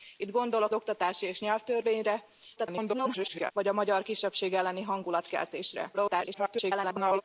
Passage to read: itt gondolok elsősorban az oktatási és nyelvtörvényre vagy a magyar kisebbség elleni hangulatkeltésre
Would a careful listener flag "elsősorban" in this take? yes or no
yes